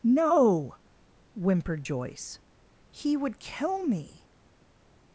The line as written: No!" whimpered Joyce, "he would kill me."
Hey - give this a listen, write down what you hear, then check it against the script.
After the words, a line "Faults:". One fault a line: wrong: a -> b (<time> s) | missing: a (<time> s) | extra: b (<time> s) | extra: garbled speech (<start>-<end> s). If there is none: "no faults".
No!" whimpered Joyce, "he would kill me."
Faults:
no faults